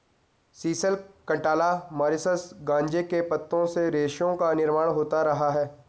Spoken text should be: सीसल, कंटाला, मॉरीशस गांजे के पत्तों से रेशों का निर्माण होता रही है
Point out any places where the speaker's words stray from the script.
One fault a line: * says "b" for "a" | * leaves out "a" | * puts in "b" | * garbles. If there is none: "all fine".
* says "रहा" for "रही"